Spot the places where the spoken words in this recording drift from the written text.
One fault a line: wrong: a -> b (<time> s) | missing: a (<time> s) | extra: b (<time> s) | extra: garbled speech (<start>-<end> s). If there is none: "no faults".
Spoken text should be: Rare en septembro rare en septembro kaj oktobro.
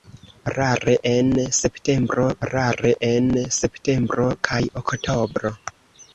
no faults